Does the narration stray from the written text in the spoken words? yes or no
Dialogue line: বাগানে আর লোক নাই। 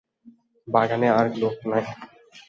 no